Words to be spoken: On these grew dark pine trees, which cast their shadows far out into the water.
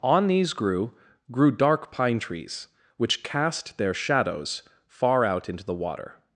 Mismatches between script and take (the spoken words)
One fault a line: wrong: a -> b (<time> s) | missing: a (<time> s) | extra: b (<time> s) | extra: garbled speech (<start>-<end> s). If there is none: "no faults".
extra: grew (1.3 s)